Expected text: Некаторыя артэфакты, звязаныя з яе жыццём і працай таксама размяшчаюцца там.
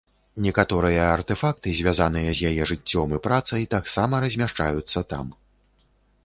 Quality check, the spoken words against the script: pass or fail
pass